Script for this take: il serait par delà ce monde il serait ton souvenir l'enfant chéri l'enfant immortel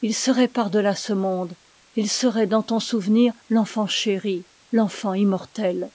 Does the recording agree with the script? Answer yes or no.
no